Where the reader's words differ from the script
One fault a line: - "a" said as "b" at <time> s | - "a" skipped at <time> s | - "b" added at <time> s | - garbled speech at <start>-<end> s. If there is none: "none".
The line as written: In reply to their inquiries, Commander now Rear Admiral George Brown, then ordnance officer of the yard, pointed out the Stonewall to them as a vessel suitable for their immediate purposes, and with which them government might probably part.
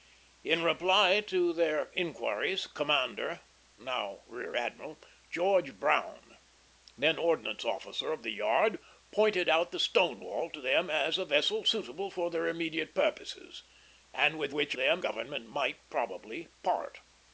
none